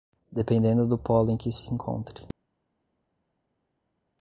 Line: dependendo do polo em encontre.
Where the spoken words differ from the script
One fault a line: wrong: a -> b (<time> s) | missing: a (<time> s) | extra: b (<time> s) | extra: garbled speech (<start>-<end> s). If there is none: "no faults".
extra: que se (1.4 s)